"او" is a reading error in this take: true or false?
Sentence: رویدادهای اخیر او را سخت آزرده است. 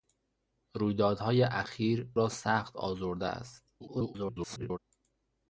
true